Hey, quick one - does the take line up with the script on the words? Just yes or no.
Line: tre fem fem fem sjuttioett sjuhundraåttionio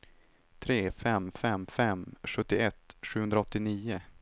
yes